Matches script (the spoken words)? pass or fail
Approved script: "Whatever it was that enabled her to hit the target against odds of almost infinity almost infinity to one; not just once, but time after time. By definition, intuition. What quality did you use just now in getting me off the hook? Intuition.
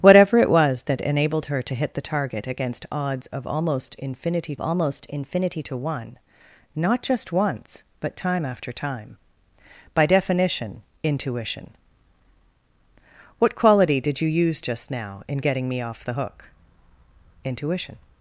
pass